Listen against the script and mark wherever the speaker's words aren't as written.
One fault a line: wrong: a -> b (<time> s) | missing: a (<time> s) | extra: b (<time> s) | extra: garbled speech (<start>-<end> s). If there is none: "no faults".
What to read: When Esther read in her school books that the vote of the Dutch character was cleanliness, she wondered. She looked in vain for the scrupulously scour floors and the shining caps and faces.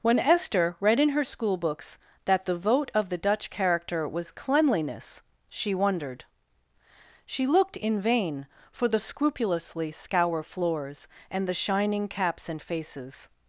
no faults